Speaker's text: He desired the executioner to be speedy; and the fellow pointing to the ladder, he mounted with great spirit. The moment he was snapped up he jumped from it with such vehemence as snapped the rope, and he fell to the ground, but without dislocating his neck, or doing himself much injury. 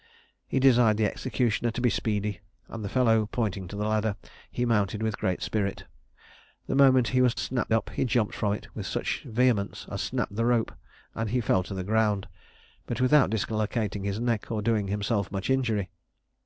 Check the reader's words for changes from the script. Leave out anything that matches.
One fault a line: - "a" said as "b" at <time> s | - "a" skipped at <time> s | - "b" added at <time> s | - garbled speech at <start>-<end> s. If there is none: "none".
none